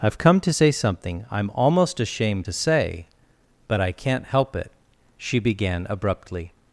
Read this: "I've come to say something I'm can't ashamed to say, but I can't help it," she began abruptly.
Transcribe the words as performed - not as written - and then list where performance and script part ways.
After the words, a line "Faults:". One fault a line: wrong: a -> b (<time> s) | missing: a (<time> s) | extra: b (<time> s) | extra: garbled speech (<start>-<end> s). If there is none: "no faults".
"I've come to say something I'm almost ashamed to say, but I can't help it," she began abruptly.
Faults:
wrong: can't -> almost (1.5 s)